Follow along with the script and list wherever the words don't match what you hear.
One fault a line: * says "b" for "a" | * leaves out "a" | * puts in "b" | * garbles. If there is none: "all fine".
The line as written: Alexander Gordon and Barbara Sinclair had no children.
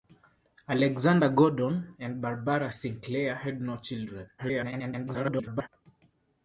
* garbles